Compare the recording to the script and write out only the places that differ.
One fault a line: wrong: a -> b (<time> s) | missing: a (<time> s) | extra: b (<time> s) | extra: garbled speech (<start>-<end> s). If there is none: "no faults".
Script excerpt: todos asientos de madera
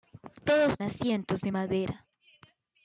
no faults